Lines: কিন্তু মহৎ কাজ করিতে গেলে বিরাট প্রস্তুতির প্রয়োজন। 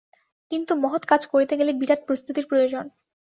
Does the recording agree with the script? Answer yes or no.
yes